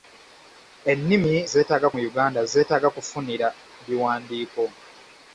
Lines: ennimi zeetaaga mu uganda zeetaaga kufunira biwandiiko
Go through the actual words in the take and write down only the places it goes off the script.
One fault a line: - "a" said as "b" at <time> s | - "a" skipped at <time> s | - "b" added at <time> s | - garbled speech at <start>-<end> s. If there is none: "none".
none